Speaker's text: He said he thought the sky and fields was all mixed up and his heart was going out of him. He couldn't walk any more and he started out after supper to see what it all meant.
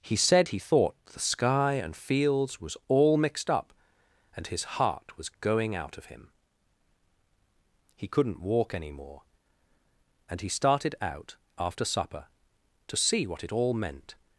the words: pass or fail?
pass